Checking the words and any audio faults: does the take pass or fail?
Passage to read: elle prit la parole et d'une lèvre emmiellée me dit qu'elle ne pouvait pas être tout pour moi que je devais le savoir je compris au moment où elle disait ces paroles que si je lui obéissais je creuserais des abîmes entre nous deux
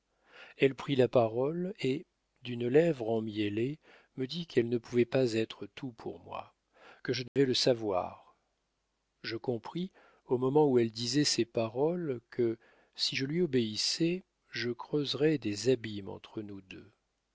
fail